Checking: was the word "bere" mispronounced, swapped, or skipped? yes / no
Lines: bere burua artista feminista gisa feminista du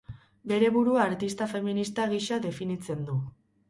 no